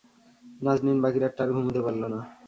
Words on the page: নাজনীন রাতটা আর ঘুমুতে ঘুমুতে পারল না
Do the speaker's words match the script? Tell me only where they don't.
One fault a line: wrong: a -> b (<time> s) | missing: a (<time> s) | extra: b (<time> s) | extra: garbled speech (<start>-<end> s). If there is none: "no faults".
extra: বাকি (1.0 s)
missing: ঘুমুতে (1.8 s)